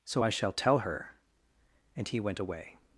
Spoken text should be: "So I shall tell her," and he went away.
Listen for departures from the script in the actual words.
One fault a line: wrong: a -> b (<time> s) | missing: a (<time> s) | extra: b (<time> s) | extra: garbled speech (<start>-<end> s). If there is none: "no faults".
no faults